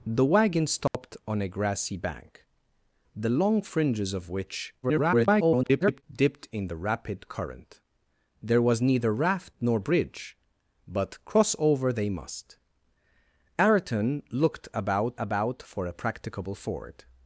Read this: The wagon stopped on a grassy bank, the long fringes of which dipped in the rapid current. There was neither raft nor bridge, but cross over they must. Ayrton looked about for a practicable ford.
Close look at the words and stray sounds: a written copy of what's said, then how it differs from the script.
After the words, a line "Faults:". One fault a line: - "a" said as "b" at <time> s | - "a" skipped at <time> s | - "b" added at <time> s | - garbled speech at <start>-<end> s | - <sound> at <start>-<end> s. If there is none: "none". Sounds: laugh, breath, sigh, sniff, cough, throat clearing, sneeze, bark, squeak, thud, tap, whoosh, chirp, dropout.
The wagon stopped on a grassy bank, the long fringes of which [garbled] dipped in the rapid current. There was neither raft nor bridge, but cross over they must. Ayrton looked about about for a practicable ford.
Faults:
- dropout at 0.9-0.9 s
- garbled speech at 4.8-6.0 s
- "about" added at 15.2 s